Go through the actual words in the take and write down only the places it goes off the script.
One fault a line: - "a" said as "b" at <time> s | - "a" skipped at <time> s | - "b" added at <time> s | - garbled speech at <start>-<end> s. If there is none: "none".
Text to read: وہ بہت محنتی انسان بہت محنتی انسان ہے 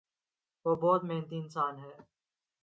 - "بہت محنتی انسان" skipped at 1.7 s